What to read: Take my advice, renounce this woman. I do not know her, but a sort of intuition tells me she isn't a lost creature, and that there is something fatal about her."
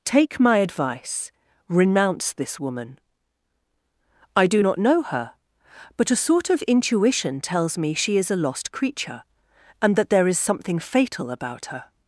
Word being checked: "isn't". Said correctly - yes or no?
no